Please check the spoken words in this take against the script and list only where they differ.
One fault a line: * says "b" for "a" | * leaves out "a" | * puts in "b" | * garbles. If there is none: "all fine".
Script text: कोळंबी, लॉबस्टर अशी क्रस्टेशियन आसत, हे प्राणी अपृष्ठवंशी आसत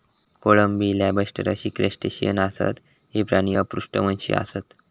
all fine